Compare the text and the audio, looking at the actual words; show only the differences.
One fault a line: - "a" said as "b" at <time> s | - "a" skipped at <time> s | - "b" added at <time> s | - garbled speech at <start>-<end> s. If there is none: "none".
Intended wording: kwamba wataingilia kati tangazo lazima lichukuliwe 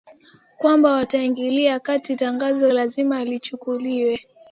none